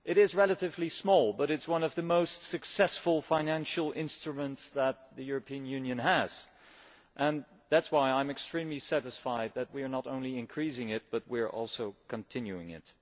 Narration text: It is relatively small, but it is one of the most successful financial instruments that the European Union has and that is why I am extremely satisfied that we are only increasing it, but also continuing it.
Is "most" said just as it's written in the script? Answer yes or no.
yes